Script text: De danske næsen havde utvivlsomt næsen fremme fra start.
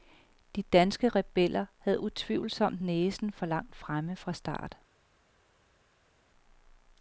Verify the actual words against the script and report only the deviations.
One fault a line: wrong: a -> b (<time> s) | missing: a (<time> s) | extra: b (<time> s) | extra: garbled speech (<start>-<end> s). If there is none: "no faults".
wrong: næsen -> rebeller (1.1 s)
extra: for langt (3.3 s)